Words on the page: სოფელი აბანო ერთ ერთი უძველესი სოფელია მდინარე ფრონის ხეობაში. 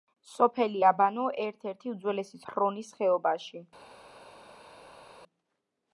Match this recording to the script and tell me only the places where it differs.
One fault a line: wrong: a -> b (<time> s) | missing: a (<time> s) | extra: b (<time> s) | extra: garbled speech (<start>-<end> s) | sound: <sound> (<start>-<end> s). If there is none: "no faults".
missing: სოფელია მდინარე (2.4 s)